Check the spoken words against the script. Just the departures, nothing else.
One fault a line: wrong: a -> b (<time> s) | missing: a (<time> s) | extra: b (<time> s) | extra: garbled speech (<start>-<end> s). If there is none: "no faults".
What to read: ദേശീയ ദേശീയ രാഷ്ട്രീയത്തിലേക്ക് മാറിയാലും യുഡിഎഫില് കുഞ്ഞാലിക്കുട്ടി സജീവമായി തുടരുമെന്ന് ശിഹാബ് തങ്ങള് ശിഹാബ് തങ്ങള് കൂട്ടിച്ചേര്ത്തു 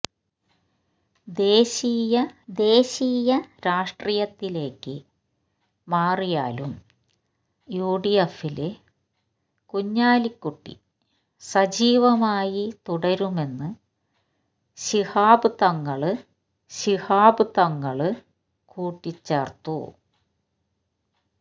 no faults